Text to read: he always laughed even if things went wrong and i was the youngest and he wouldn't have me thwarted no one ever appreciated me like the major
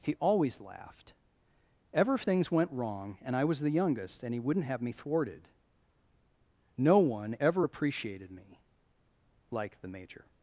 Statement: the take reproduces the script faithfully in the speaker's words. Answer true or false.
false